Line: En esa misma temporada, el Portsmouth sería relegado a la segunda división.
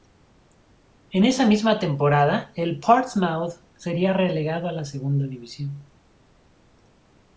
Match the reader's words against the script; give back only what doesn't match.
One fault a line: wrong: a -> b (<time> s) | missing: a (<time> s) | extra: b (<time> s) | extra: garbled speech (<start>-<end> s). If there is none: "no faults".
no faults